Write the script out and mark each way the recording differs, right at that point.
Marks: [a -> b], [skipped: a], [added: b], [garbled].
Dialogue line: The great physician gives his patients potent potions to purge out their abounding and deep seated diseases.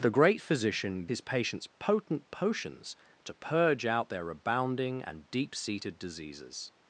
The great physician [skipped: gives] his patients potent potions to purge out their abounding and deep seated diseases.